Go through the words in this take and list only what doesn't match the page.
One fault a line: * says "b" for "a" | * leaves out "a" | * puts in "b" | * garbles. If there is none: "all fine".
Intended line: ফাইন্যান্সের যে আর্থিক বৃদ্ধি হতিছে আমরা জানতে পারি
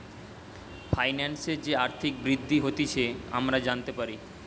all fine